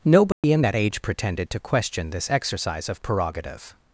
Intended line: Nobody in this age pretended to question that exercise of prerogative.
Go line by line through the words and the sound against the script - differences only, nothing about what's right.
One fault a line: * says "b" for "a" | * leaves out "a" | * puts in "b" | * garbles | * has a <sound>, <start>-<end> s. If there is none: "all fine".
* has a dropout, 0.3-0.4 s
* says "that" for "this"
* says "this" for "that"